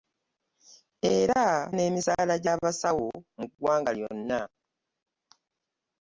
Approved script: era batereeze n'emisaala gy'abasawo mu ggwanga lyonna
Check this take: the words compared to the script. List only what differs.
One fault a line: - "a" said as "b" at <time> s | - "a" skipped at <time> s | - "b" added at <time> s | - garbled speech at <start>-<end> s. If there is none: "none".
- "batereeze" skipped at 1.4 s